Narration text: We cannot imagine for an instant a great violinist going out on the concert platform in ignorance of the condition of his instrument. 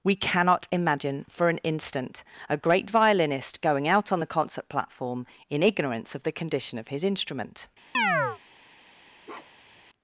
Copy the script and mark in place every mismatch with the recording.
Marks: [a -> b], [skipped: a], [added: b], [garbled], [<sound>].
We cannot imagine for an instant a great violinist going out on the concert platform in ignorance of the condition of his instrument. [chirp] [bark]